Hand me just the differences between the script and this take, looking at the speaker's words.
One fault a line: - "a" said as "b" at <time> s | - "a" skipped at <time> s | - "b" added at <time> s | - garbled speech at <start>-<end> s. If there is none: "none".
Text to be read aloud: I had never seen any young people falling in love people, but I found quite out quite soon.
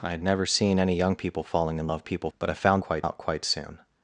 none